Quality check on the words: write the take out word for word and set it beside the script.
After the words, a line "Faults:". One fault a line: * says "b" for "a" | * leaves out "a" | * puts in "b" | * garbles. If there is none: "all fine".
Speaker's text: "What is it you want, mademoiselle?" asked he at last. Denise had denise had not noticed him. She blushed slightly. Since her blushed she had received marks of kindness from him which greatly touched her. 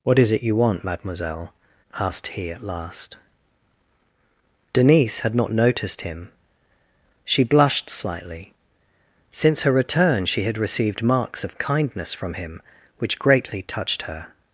"What is it you want, mademoiselle?" asked he at last. Denise had not noticed him. She blushed slightly. Since her return she had received marks of kindness from him which greatly touched her.
Faults:
* leaves out "denise had"
* says "return" for "blushed"